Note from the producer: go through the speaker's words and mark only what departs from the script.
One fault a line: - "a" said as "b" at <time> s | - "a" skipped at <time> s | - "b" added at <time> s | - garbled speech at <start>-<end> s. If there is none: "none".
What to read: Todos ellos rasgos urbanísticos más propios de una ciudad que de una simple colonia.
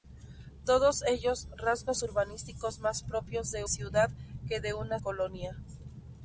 - "una" skipped at 3.7 s
- "simple" skipped at 5.0 s